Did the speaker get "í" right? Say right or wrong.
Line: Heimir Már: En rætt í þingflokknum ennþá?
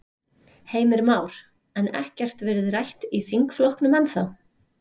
right